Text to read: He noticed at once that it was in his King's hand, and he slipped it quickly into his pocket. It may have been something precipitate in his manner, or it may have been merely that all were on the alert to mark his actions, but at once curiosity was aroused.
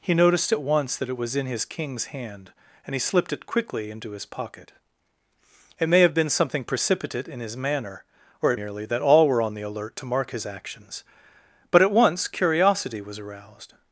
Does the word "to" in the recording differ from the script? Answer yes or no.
no